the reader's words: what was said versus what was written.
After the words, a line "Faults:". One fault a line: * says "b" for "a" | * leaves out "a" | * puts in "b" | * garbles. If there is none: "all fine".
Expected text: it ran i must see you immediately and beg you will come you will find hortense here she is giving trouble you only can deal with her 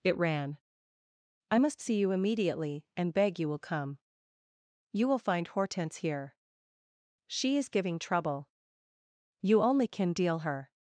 it ran i must see you immediately and beg you will come you will find hortense here she is giving trouble you only can deal her
Faults:
* leaves out "with"